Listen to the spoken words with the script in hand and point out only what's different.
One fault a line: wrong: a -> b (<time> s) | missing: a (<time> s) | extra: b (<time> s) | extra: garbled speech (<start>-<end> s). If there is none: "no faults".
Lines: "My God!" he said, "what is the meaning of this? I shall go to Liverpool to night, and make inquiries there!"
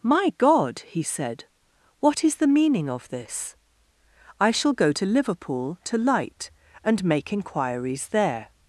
wrong: night -> light (6.0 s)